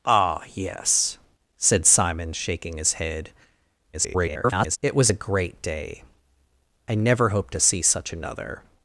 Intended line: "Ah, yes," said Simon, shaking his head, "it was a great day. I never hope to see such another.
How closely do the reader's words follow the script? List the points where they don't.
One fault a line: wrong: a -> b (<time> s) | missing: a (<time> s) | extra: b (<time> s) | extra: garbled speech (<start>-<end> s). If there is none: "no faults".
extra: garbled speech (3.9-4.8 s)